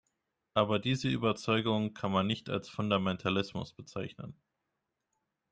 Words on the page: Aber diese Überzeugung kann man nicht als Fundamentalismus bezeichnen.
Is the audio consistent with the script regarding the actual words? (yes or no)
yes